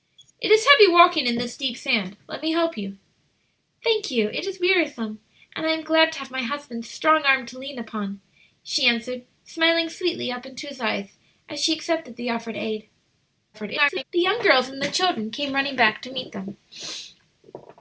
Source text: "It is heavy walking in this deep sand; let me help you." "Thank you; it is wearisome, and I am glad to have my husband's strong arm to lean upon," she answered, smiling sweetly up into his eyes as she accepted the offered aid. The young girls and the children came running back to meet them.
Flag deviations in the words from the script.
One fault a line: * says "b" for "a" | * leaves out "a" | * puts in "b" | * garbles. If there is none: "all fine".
* garbles